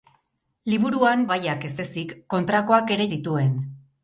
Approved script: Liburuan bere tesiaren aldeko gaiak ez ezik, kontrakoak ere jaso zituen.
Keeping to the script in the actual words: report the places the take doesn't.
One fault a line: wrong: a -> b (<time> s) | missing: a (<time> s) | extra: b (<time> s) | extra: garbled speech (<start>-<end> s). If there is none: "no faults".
missing: bere tesiaren aldeko (1.2 s)
missing: jaso (3.1 s)